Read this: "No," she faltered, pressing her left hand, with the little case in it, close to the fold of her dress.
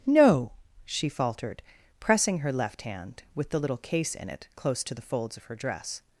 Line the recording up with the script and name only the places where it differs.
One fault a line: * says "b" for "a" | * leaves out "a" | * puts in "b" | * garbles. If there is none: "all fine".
* says "folds" for "fold"